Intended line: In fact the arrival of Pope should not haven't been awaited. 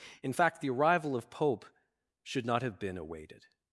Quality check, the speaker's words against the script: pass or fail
fail